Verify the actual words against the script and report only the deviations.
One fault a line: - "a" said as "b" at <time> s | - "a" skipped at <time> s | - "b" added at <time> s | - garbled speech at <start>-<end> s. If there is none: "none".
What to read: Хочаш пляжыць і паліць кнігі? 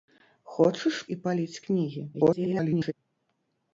- "пляжыць" skipped at 1.0 s
- garbled speech at 2.1-2.9 s